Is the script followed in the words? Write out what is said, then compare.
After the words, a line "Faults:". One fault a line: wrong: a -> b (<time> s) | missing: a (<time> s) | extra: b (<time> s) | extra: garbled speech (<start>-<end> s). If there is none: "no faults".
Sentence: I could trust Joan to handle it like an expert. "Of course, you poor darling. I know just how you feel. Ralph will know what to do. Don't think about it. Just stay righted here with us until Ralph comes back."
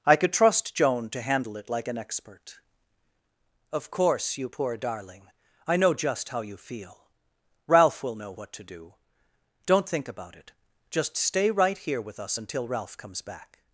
I could trust Joan to handle it like an expert. "Of course, you poor darling. I know just how you feel. Ralph will know what to do. Don't think about it. Just stay right here with us until Ralph comes back."
Faults:
wrong: righted -> right (11.5 s)